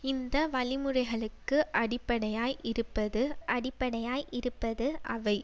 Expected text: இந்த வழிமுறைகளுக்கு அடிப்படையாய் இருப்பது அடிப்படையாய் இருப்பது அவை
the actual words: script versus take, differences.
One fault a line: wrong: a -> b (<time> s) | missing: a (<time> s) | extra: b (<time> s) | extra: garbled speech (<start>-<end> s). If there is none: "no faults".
no faults